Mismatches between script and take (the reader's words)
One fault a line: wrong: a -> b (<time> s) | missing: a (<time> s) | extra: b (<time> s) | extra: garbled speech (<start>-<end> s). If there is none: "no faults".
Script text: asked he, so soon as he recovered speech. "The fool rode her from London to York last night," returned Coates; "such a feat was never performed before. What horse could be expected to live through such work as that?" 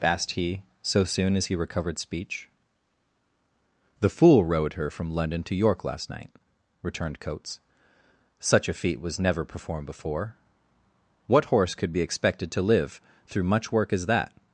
wrong: such -> much (13.4 s)